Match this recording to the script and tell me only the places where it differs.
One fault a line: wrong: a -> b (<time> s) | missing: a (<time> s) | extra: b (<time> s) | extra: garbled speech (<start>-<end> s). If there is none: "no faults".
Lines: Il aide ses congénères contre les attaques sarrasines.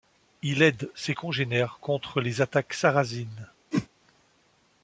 no faults